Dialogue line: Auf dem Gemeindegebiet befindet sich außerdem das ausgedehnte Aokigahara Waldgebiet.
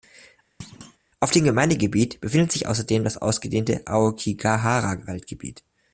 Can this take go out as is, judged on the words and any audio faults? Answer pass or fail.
fail